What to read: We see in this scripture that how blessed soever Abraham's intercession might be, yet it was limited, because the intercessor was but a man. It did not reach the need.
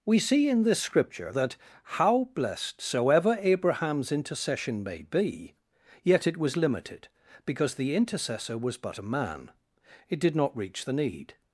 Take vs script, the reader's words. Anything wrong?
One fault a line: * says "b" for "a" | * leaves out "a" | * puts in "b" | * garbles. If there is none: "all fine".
* says "may" for "might"